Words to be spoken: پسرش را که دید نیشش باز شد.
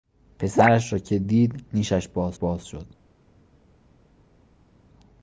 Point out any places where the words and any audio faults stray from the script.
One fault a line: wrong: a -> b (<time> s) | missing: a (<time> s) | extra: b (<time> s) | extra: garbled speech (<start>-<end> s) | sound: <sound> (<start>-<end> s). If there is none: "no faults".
extra: باز (2.3 s)